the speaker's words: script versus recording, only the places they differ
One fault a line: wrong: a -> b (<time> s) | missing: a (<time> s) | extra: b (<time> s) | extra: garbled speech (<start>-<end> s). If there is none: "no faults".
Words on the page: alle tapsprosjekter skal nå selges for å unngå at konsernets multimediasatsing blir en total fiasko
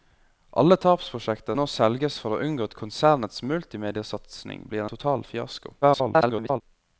missing: skal (1.6 s)
missing: en (4.9 s)
extra: garbled speech (5.8-6.6 s)